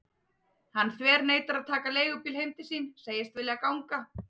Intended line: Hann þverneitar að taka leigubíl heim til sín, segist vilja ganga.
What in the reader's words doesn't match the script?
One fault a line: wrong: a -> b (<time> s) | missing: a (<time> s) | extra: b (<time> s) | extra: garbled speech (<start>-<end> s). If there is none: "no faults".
no faults